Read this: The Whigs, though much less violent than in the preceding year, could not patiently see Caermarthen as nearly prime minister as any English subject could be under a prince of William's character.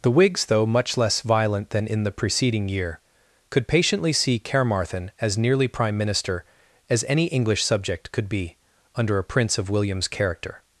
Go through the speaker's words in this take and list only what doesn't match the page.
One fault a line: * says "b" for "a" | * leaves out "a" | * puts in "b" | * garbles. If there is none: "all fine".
* leaves out "not"